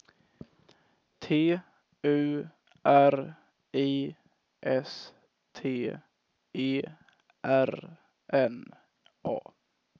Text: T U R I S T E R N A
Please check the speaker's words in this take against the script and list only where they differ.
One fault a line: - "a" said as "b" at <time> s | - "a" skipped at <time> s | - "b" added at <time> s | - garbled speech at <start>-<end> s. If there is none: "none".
none